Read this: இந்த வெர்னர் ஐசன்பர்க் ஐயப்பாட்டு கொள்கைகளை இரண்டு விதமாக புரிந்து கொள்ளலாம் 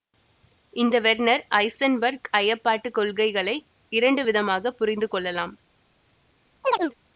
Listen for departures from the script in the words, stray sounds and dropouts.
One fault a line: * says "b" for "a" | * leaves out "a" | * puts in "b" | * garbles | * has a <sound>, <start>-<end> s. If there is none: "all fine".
* has a chirp, 6.6-6.9 s